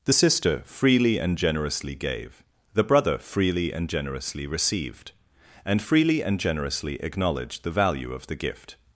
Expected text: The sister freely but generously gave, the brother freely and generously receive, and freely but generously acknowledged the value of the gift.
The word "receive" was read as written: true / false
false